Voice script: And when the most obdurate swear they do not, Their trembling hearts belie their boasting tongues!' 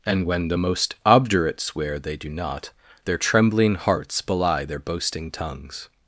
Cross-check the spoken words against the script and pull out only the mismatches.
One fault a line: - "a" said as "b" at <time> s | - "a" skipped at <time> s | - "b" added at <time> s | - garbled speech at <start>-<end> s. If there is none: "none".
none